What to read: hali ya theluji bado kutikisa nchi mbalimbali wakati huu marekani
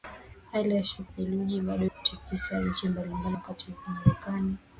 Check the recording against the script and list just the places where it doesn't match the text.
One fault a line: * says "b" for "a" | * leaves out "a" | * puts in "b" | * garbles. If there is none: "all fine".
all fine